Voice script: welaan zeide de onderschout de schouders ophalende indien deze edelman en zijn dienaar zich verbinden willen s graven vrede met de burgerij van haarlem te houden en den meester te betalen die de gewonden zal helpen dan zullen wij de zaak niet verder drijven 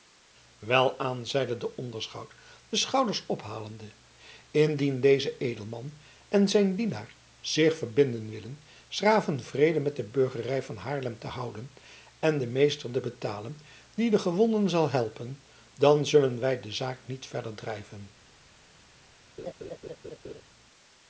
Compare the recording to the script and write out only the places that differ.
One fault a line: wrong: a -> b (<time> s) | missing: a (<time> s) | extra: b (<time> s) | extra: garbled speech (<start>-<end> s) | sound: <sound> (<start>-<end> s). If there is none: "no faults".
sound: laugh (19.4-20.4 s)